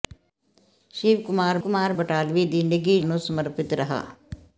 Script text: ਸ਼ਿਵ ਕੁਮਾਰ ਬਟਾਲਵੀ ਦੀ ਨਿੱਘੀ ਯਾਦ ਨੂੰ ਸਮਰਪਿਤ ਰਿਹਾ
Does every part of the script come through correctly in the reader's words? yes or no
no